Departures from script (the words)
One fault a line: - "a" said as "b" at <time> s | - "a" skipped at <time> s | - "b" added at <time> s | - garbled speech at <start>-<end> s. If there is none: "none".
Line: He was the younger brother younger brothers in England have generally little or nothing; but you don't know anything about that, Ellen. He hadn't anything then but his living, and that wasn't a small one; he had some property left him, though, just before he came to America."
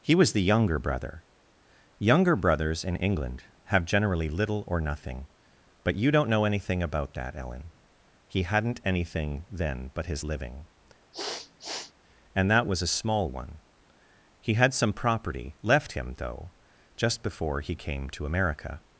- "wasn't" said as "was" at 12.7 s